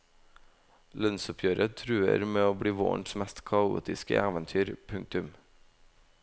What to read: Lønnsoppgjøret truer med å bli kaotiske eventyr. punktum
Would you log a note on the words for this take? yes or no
yes